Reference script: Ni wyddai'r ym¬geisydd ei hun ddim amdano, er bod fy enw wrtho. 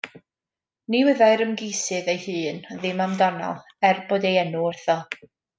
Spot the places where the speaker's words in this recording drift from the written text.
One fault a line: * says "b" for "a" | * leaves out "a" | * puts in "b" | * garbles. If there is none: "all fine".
* says "ei" for "fy"